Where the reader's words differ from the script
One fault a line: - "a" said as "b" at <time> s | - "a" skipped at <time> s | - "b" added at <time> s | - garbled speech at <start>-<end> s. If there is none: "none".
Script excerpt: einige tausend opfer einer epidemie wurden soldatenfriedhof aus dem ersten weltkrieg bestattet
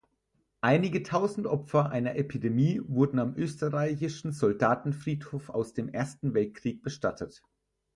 - "am österreichischen" added at 3.2 s